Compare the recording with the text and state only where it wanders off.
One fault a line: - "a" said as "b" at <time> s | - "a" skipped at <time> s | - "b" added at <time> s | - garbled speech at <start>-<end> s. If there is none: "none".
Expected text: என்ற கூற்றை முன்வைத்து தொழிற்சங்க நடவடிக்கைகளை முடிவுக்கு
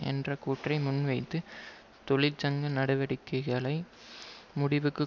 none